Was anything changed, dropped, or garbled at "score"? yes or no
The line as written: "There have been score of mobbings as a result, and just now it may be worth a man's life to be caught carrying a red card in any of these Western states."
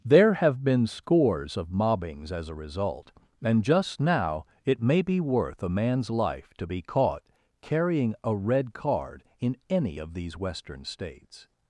yes